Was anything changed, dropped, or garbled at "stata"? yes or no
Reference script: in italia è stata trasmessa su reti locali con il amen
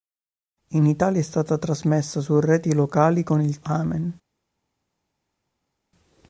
no